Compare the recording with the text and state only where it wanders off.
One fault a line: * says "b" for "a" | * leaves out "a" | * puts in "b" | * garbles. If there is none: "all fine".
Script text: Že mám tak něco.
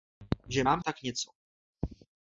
all fine